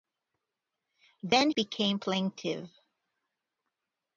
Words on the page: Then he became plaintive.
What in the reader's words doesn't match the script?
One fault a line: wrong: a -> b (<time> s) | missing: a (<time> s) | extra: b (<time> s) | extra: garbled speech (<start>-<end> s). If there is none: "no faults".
missing: he (1.5 s)